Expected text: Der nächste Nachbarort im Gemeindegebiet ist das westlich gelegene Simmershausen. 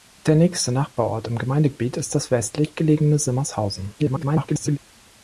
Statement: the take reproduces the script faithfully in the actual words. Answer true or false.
false